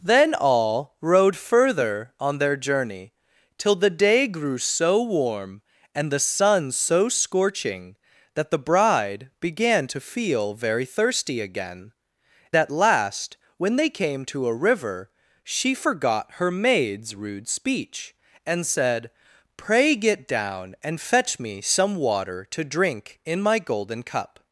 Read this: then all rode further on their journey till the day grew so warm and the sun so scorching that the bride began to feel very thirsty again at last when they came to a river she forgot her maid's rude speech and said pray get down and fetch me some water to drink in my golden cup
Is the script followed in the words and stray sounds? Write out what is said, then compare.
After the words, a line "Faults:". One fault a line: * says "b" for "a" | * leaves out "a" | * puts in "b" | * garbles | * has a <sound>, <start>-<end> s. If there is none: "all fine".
then all rode further on their journey till the day grew so warm and the sun so scorching that the bride began to feel very thirsty again at last when they came to a river she forgot her maid's rude speech and said pray get down and fetch me some water to drink in my golden cup
Faults:
all fine